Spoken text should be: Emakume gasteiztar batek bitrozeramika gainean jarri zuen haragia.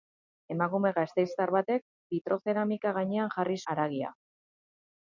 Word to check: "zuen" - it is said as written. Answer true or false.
false